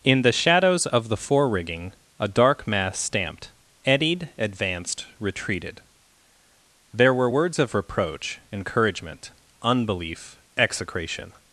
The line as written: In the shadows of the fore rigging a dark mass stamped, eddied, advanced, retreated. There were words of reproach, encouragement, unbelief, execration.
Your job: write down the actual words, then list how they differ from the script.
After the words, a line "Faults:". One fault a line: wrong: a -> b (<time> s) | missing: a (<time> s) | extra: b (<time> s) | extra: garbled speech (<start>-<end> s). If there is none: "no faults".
In the shadows of the fore rigging a dark mass stamped, eddied, advanced, retreated. There were words of reproach, encouragement, unbelief, execration.
Faults:
no faults